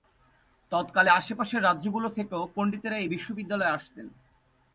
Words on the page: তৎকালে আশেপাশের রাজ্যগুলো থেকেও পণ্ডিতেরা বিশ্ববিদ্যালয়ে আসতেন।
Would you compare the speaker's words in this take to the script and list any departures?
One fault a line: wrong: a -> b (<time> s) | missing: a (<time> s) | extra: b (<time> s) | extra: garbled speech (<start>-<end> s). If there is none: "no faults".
extra: এই (3.0 s)